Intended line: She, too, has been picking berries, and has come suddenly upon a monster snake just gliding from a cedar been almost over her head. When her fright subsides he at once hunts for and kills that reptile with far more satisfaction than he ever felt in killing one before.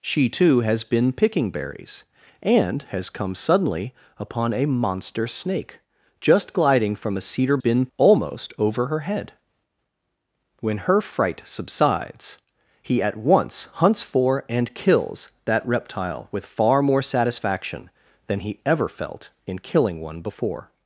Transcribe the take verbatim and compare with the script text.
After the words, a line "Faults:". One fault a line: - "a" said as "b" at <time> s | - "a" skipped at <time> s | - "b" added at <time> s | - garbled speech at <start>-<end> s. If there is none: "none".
She, too, has been picking berries, and has come suddenly upon a monster snake just gliding from a cedar been almost over her head. When her fright subsides he at once hunts for and kills that reptile with far more satisfaction than he ever felt in killing one before.
Faults:
none